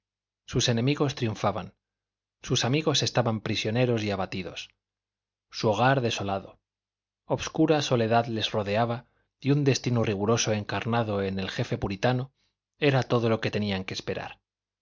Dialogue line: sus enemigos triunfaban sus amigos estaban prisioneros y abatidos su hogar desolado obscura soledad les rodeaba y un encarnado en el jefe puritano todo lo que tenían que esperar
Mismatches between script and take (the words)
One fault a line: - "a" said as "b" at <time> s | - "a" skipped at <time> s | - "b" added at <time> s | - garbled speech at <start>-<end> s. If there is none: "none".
- "destino riguroso" added at 9.6 s
- "era" added at 12.8 s